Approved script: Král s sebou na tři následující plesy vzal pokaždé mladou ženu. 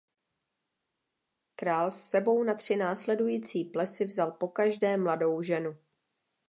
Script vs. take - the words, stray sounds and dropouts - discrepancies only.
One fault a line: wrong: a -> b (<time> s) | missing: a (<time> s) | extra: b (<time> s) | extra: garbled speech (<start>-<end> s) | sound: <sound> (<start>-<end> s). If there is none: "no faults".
no faults